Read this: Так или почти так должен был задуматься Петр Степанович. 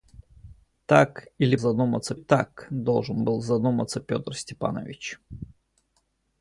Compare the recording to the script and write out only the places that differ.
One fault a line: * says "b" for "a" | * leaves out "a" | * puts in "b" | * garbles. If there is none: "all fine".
* says "задуматься" for "почти"